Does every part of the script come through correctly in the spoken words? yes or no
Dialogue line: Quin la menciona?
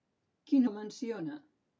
yes